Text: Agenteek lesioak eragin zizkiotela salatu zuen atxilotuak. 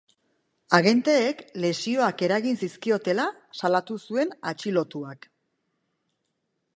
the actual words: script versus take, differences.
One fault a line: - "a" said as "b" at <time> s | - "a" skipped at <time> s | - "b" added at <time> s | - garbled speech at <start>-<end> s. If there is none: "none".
none